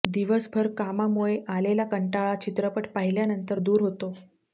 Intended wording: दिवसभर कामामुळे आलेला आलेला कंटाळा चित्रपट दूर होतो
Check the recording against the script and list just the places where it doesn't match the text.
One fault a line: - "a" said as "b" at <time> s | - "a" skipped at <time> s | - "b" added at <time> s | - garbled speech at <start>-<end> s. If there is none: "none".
- "आलेला" skipped at 1.8 s
- "पाहिल्यानंतर" added at 2.9 s